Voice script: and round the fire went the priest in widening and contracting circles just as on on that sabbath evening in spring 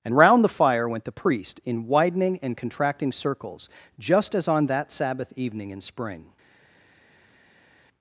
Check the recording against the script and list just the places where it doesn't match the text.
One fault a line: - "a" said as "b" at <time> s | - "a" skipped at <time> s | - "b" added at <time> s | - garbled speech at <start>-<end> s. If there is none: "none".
- "on" skipped at 4.7 s